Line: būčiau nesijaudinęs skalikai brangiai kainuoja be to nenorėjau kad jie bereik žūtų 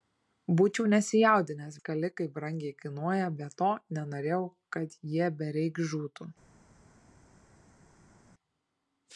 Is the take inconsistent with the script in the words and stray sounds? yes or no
no